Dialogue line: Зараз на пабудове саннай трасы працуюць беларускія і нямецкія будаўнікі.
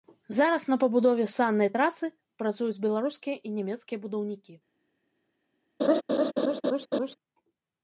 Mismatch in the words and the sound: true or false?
true